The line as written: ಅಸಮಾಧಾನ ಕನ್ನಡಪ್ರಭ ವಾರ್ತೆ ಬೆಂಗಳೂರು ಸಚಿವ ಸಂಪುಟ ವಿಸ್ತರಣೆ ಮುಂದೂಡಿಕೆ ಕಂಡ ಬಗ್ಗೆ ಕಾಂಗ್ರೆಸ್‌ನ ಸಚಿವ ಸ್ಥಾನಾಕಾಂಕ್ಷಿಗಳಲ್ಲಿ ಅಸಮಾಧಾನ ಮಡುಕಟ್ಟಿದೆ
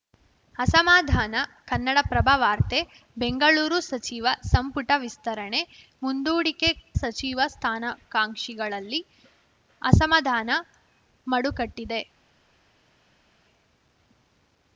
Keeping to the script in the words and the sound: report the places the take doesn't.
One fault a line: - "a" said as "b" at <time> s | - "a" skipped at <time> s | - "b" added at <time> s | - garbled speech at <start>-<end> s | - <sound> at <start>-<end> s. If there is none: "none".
- "ಕಂಡ ಬಗ್ಗೆ ಕಾಂಗ್ರೆಸ್‌ನ" skipped at 6.7 s